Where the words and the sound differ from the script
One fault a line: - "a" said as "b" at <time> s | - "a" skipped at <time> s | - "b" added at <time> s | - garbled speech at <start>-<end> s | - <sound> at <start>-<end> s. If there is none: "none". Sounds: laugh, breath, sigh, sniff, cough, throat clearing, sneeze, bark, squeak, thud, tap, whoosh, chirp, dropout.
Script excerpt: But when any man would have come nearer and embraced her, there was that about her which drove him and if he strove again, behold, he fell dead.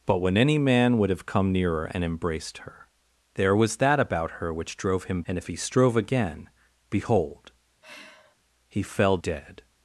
- sigh at 7.8-8.4 s